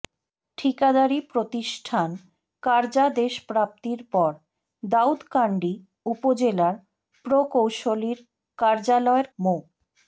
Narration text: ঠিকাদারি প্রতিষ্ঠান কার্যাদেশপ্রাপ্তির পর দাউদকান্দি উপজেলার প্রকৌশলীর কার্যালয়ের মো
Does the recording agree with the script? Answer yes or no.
yes